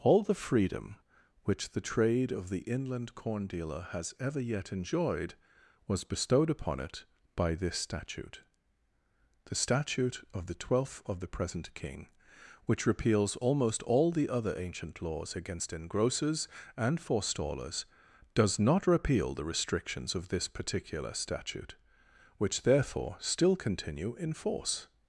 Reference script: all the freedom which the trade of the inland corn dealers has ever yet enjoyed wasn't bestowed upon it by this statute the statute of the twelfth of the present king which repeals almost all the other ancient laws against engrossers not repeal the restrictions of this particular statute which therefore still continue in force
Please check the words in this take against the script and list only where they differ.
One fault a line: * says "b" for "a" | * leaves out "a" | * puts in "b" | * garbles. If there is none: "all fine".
* says "dealer" for "dealers"
* says "was" for "wasn't"
* puts in "and forestallers does"